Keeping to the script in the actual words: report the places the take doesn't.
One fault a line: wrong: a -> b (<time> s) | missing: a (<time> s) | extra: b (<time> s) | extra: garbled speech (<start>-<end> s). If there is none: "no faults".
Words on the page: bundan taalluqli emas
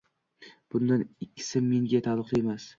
extra: ikkisi menga (1.3 s)